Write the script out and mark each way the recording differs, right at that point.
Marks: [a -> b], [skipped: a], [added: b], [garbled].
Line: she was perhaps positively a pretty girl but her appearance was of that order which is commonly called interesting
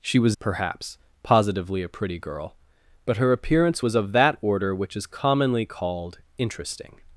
she was perhaps positively a pretty girl but her appearance was of that order which is commonly called interesting